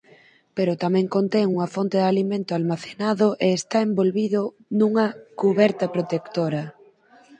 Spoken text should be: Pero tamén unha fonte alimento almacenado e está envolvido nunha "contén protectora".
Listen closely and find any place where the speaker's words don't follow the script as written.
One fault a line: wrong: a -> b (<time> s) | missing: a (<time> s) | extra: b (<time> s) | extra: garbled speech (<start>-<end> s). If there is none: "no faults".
extra: contén (1.1 s)
extra: de (2.0 s)
wrong: contén -> cuberta (5.4 s)